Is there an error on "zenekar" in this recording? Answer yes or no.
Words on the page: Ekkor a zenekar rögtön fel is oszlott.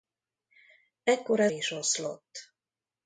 yes